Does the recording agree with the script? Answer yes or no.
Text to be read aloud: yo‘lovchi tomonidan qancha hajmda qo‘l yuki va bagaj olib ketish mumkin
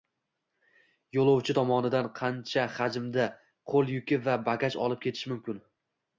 yes